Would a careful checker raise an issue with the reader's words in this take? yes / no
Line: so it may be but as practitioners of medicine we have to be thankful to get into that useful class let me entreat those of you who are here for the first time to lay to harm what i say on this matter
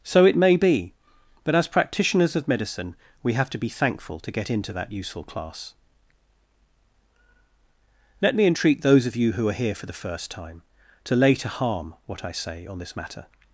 no